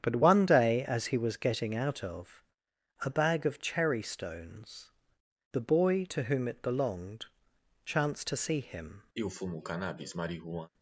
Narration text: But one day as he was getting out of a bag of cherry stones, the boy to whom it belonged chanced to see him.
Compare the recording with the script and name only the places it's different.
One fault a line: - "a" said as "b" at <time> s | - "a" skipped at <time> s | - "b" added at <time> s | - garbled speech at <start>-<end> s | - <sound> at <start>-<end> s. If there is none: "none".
- sniff at 9.1-10.7 s